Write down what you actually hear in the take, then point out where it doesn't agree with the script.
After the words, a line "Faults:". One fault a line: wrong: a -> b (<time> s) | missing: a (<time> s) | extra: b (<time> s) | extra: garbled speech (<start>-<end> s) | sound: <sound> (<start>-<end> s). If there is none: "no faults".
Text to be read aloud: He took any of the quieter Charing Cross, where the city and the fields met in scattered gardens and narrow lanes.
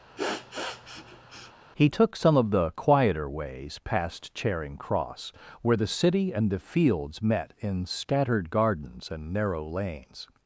He took some of the quieter ways past Charing Cross, where the city and the fields met in scattered gardens and narrow lanes.
Faults:
sound: sniff (0.2-1.5 s)
wrong: any -> some (2.2 s)
extra: ways past (3.3 s)